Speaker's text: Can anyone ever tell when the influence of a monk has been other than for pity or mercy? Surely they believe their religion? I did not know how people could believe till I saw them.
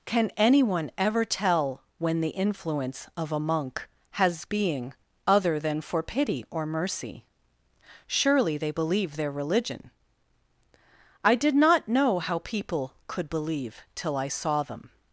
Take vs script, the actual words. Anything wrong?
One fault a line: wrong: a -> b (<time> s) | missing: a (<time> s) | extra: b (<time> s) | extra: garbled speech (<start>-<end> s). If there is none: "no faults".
wrong: been -> being (4.4 s)